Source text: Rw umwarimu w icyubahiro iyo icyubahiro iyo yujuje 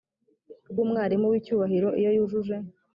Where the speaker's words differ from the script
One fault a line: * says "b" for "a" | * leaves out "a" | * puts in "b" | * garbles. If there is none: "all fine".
* leaves out "icyubahiro iyo"